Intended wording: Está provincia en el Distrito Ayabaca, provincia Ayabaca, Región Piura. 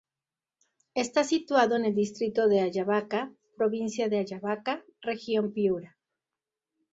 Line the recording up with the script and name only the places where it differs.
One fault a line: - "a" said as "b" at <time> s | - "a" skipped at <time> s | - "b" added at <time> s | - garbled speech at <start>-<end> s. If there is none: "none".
- "provincia" said as "situado" at 1.2 s
- "de" added at 2.5 s
- "de" added at 4.1 s